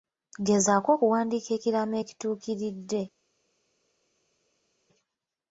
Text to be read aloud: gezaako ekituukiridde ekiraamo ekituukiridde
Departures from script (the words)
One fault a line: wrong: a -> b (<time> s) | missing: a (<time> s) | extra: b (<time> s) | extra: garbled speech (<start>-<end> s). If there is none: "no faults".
wrong: ekituukiridde -> okuwandiika (0.9 s)